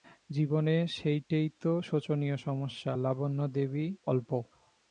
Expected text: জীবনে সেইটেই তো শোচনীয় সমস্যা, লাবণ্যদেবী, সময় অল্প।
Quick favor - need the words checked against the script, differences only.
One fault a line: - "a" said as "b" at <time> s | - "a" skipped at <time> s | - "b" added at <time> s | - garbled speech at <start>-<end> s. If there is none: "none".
- "সময়" skipped at 3.9 s